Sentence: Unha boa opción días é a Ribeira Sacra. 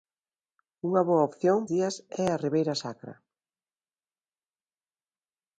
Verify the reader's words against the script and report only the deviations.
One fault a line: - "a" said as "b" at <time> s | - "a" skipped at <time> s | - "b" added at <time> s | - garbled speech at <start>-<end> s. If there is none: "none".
none